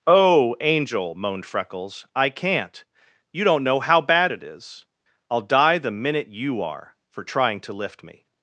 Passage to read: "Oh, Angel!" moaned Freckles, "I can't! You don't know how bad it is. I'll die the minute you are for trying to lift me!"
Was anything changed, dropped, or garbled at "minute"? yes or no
no